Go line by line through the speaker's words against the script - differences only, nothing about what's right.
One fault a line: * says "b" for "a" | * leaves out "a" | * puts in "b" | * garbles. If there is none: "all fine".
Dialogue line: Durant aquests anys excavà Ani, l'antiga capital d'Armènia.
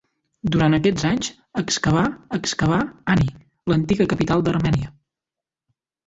* puts in "excavà"